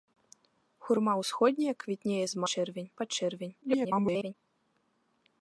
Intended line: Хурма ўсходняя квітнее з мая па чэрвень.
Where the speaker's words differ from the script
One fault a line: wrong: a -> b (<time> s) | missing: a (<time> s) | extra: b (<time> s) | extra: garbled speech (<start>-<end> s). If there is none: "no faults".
wrong: мая -> чэрвень (2.5 s)
extra: garbled speech (3.6-4.3 s)